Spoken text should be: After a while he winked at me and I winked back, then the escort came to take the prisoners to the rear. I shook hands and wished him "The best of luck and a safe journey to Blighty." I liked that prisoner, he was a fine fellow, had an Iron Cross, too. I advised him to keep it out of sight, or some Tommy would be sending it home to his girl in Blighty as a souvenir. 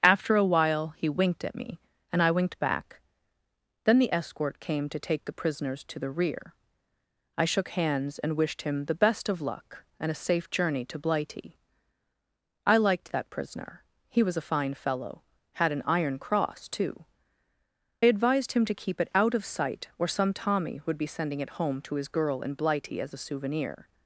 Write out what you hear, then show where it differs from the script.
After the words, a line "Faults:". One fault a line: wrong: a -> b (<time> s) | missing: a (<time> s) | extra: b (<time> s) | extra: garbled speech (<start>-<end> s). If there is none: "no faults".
After a while he winked at me and I winked back, then the escort came to take the prisoners to the rear. I shook hands and wished him "The best of luck and a safe journey to Blighty." I liked that prisoner, he was a fine fellow, had an Iron Cross, too. advised him to keep it out of sight, or some Tommy would be sending it home to his girl in Blighty as a souvenir.
Faults:
missing: I (17.1 s)